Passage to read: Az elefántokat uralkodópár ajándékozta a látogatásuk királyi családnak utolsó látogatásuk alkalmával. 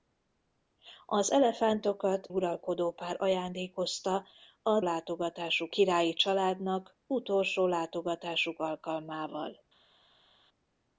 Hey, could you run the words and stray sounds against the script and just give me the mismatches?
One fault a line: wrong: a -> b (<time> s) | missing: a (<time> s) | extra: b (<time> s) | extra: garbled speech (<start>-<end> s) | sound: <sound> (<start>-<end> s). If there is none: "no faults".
no faults